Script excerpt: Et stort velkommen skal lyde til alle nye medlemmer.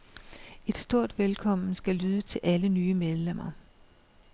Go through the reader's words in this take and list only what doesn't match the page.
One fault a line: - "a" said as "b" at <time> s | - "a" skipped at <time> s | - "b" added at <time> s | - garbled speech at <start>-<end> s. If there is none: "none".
none